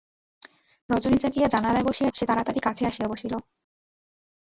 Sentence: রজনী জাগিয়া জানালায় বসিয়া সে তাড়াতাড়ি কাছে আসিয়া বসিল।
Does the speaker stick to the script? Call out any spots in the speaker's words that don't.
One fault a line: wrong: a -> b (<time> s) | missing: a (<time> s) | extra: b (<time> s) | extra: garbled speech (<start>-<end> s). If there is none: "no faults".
no faults